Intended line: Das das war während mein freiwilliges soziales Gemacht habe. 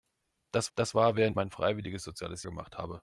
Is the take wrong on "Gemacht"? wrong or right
right